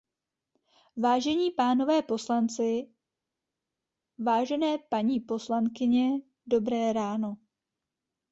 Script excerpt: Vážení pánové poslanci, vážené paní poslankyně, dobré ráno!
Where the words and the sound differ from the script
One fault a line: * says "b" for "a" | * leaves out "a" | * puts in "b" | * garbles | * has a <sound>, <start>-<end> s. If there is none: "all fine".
all fine